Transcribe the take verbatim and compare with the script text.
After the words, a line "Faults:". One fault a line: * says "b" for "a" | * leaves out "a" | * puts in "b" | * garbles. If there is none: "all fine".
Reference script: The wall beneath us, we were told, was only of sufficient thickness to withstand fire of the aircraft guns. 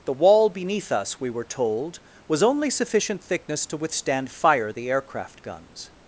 The wall beneath us, we were told, was only sufficient thickness to withstand fire the aircraft guns.
Faults:
* leaves out "of"
* leaves out "of"